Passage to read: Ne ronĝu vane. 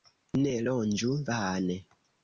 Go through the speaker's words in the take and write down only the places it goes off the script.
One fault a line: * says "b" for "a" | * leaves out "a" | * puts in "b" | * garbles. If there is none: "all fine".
all fine